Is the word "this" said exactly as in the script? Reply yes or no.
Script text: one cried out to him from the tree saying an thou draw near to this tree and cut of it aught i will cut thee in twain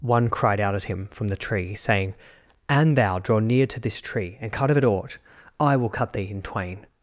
yes